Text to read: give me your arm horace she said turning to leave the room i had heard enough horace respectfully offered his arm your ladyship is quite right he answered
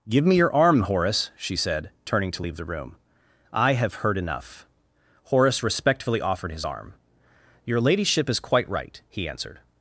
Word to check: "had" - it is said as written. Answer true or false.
false